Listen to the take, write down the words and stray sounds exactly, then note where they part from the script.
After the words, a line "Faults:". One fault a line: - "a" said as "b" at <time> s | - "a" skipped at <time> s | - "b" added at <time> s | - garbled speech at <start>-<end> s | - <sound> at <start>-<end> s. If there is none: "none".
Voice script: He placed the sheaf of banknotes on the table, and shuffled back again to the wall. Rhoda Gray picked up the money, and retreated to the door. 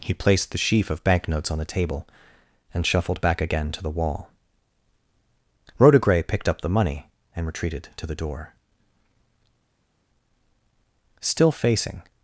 He placed the sheaf of banknotes on the table, and shuffled back again to the wall. Rhoda Gray picked up the money, and retreated to the door. Still facing
Faults:
- "Still facing" added at 11.2 s